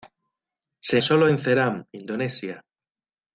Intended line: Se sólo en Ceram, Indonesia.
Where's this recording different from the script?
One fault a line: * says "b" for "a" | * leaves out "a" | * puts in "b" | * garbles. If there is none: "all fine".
all fine